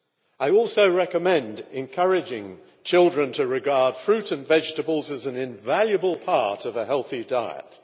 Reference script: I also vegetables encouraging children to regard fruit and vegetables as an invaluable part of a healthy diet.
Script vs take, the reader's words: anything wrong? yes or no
yes